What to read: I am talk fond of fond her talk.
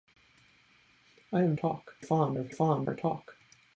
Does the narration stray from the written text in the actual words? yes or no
no